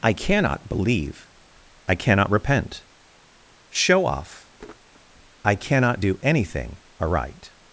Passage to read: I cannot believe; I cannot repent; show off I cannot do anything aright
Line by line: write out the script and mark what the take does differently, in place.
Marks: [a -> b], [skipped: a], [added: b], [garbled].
I cannot believe; I cannot repent; show off I cannot do anything aright